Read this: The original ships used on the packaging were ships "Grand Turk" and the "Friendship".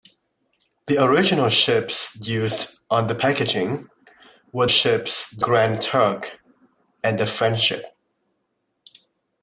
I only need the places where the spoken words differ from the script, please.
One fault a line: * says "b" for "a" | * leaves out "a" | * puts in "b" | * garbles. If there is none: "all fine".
all fine